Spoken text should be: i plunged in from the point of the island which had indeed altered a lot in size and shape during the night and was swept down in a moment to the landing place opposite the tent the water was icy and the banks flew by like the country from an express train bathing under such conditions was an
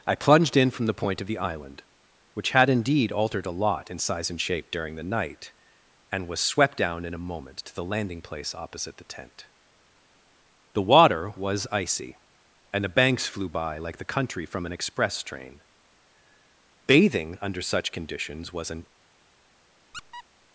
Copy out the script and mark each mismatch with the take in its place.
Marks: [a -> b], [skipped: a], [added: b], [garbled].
i plunged in from the point of the island which had indeed altered a lot in size and shape during the night and was swept down in a moment to the landing place opposite the tent the water was icy and the banks flew by like the country from an express train bathing under such conditions was an